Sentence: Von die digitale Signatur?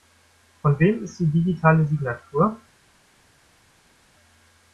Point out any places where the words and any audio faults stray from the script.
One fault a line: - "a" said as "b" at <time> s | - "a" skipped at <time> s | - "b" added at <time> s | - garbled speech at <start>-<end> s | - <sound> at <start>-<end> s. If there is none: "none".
- "wem ist" added at 0.8 s